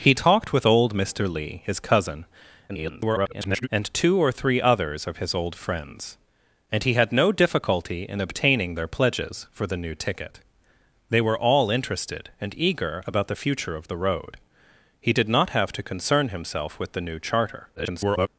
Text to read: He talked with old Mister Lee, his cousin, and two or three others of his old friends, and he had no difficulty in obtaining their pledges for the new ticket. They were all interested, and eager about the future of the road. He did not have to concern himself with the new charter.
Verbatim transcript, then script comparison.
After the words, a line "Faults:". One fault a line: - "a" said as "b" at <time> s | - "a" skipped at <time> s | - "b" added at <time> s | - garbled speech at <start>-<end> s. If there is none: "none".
He talked with old Mister Lee, his cousin, [garbled] and two or three others of his old friends, and he had no difficulty in obtaining their pledges for the new ticket. They were all interested, and eager about the future of the road. He did not have to concern himself with the new charter. [garbled]
Faults:
- garbled speech at 2.7-3.7 s
- garbled speech at 17.8-18.3 s